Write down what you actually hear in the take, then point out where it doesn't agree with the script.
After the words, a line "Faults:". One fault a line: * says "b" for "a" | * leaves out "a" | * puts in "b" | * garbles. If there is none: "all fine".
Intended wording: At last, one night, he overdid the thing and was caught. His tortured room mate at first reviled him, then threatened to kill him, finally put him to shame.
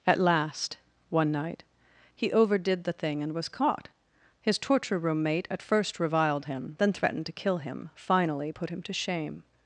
At last, one night, he overdid the thing and was caught. His torture room mate at first reviled him, then threatened to kill him, finally put him to shame.
Faults:
* says "torture" for "tortured"